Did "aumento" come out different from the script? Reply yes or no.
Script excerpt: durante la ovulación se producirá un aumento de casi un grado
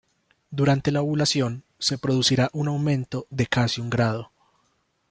no